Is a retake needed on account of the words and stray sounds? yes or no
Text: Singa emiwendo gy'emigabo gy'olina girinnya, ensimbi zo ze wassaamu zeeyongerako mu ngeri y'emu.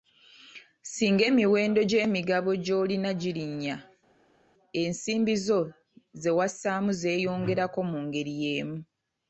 no